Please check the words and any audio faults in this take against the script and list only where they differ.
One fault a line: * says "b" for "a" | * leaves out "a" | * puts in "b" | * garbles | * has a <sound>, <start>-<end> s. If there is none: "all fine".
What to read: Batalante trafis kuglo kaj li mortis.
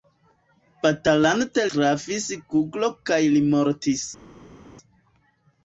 all fine